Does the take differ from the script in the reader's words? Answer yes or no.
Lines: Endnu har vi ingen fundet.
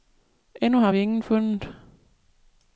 no